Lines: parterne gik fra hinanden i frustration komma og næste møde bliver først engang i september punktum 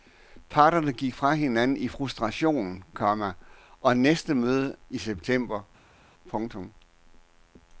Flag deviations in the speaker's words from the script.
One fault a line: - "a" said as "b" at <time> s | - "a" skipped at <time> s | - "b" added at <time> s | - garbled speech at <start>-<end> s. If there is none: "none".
- "bliver først engang" skipped at 4.8 s